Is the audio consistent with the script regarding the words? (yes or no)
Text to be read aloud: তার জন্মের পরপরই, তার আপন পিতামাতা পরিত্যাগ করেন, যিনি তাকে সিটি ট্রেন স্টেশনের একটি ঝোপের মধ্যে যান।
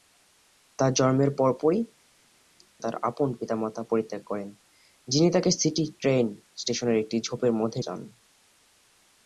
yes